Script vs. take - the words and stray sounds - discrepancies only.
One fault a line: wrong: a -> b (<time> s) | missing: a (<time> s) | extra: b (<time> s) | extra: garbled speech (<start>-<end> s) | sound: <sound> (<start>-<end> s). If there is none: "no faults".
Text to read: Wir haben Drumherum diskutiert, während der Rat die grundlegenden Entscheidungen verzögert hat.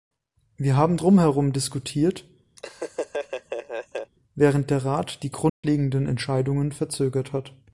sound: laugh (2.6-4.1 s)
sound: dropout (5.5-5.6 s)